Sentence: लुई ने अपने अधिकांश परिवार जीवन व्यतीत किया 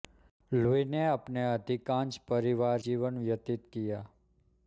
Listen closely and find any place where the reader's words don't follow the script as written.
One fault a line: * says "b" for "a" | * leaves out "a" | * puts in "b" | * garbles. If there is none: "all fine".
all fine